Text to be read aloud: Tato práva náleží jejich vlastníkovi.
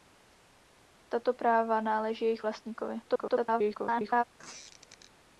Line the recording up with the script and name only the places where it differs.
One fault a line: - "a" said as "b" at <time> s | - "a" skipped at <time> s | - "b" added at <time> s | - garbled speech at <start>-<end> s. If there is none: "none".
- garbled speech at 3.1-4.2 s